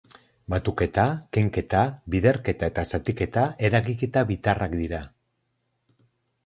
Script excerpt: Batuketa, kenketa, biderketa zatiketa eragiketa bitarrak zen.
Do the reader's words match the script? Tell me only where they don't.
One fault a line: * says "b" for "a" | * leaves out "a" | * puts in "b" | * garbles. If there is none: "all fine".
* puts in "eta"
* says "dira" for "zen"